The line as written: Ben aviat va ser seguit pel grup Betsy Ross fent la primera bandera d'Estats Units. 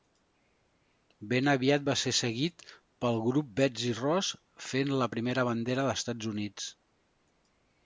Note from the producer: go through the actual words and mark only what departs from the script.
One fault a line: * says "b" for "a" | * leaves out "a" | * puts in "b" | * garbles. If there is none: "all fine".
all fine